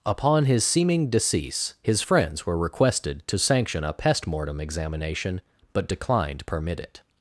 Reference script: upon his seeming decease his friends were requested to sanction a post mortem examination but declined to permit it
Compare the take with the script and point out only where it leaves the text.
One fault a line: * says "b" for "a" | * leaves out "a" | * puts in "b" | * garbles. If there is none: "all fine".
* says "pest" for "post"
* leaves out "to"